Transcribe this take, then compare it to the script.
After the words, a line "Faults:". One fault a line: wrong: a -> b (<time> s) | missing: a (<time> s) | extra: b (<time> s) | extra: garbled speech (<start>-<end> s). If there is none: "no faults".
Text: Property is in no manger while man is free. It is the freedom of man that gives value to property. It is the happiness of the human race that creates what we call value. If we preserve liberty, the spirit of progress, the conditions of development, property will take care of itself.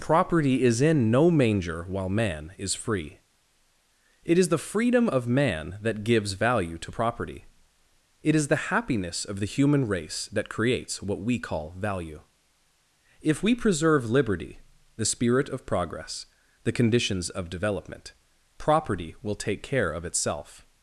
Property is in no manger while man is free. It is the freedom of man that gives value to property. It is the happiness of the human race that creates what we call value. If we preserve liberty, the spirit of progress, the conditions of development, property will take care of itself.
Faults:
no faults